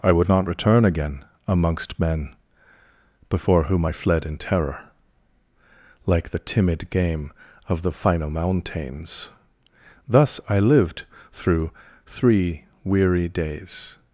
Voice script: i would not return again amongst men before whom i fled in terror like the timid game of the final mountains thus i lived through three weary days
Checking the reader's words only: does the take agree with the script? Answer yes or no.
yes